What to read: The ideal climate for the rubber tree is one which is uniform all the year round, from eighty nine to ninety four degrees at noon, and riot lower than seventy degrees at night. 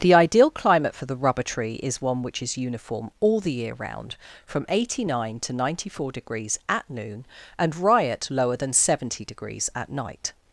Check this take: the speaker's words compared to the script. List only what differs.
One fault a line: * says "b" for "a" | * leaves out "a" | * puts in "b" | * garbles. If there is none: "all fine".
all fine